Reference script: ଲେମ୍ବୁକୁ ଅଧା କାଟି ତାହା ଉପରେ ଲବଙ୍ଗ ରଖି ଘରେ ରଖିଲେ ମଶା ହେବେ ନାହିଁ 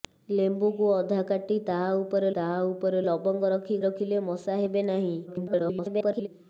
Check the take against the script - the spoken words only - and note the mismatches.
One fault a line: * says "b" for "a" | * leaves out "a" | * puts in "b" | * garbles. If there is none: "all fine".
* puts in "ତାହା ଉପରେ"
* leaves out "ଘରେ"
* garbles